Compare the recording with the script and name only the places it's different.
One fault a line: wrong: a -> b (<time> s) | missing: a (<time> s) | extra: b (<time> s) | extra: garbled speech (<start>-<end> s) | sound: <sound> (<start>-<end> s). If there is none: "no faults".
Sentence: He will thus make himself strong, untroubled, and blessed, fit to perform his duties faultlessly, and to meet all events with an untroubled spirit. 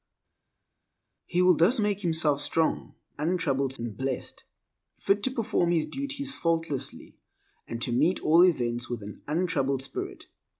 no faults